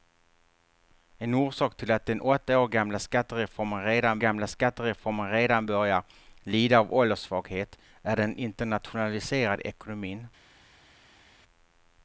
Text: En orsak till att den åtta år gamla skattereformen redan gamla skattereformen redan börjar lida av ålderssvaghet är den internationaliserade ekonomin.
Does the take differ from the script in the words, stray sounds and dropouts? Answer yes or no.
no